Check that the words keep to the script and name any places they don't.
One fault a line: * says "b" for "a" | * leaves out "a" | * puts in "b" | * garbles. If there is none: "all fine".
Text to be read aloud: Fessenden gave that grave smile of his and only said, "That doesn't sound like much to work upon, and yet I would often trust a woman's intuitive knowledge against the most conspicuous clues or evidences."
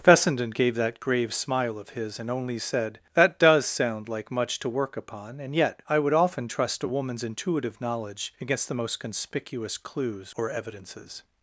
* says "does" for "doesn't"